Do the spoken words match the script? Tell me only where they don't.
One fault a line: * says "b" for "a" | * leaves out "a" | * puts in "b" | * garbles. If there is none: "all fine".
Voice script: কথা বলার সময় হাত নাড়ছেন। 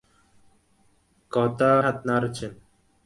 * leaves out "বলার সময়"